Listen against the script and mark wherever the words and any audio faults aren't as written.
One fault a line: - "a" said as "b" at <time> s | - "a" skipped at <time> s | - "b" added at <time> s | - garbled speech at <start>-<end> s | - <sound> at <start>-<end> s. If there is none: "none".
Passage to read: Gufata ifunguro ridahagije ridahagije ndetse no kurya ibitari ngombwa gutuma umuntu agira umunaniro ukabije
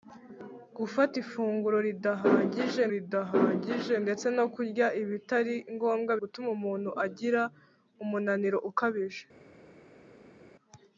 none